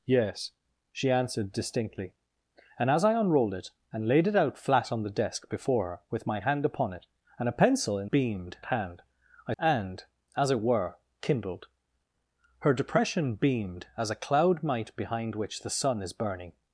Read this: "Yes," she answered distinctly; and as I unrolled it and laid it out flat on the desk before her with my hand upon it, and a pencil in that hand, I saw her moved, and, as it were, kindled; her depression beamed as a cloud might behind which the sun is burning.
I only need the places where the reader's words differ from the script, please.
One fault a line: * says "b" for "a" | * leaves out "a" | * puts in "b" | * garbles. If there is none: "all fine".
* says "beamed" for "that"
* leaves out "saw her moved"